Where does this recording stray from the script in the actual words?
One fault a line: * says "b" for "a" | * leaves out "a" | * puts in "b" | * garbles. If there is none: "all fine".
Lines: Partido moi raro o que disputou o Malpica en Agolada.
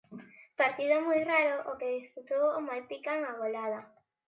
all fine